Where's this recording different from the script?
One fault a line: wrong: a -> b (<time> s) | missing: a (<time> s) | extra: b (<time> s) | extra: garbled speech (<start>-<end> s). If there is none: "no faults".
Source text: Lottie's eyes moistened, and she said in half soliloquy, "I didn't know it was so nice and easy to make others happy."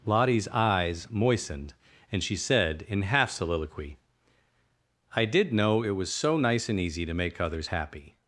wrong: didn't -> did (5.2 s)